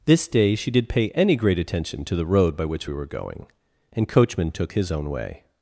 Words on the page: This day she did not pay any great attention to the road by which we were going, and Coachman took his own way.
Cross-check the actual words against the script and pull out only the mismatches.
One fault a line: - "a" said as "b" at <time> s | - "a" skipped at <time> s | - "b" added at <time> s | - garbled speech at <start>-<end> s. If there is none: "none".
- "not" skipped at 0.9 s